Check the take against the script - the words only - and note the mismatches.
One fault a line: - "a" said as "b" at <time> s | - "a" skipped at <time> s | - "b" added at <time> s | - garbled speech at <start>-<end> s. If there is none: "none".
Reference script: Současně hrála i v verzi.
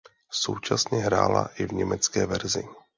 - "německé" added at 1.7 s